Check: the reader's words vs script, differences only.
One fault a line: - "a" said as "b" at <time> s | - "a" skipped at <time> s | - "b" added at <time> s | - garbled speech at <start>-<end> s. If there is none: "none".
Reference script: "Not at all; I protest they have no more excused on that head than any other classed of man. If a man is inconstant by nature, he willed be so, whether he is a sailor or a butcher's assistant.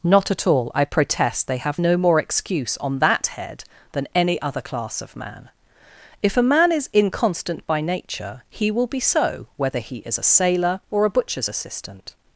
- "excused" said as "excuse" at 2.2 s
- "classed" said as "class" at 4.6 s
- "willed" said as "will" at 8.7 s